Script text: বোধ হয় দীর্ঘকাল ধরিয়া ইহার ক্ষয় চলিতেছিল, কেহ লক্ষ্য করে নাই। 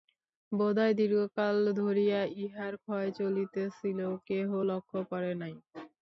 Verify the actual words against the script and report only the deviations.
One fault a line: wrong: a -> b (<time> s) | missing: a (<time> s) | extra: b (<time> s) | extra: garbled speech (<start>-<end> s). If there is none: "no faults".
no faults